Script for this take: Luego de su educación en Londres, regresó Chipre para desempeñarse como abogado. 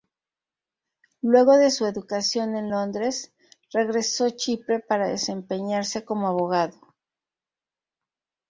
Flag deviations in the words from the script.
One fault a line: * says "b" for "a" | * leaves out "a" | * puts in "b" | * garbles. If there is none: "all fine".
all fine